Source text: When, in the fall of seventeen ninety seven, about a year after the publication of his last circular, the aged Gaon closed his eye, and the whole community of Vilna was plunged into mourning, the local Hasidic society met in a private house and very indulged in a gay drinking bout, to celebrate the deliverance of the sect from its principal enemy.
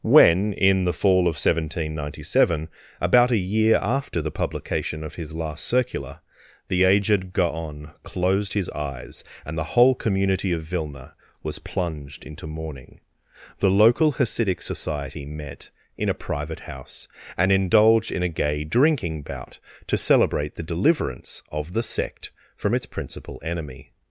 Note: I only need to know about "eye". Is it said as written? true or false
false